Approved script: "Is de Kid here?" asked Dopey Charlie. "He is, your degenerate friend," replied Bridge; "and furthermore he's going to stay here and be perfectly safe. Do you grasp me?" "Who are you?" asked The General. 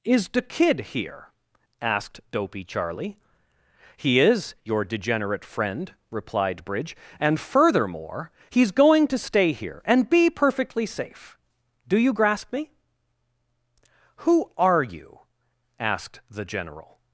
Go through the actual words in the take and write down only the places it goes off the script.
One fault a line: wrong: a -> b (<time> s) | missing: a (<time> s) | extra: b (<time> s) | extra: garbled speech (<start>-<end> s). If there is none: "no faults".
no faults